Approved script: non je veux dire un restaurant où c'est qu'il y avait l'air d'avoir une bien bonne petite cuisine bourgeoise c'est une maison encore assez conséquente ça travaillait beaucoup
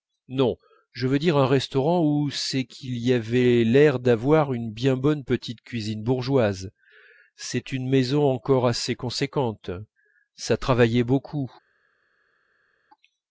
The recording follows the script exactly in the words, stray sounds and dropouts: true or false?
true